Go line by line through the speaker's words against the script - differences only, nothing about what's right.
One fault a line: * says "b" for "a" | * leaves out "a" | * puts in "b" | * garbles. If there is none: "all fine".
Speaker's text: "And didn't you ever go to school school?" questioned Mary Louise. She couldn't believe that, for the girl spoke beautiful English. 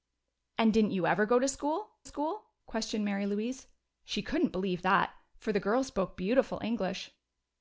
all fine